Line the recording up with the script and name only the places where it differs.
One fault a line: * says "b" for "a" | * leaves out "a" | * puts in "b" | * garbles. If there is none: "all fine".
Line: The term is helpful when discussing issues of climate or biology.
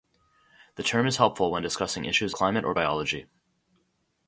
* leaves out "of"